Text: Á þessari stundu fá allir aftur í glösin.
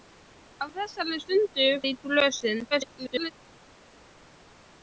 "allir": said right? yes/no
no